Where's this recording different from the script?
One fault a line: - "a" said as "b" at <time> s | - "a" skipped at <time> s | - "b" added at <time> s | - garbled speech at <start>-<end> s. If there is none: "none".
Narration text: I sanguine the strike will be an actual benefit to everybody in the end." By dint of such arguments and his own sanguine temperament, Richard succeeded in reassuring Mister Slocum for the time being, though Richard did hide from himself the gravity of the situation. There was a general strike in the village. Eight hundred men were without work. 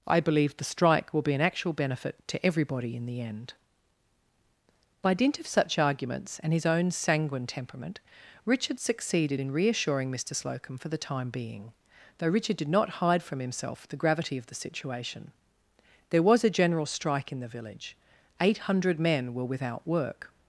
- "sanguine" said as "believe" at 0.2 s
- "not" added at 12.7 s